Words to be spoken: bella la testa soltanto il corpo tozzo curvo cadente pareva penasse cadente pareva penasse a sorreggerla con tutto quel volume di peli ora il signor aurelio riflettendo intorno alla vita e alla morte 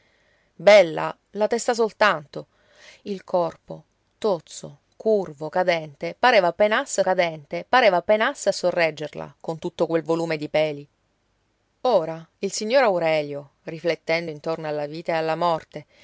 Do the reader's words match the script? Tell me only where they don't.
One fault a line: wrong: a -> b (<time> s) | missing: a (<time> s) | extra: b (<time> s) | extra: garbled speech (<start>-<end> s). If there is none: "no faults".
no faults